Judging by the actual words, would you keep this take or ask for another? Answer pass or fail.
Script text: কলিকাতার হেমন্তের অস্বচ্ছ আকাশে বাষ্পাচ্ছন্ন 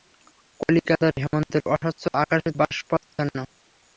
pass